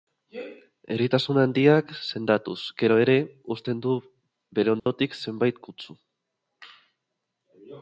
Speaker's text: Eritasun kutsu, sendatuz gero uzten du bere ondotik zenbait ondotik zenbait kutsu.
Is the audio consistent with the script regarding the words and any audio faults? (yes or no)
no